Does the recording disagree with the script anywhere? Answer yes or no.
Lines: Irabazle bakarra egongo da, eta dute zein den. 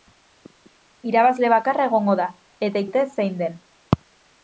no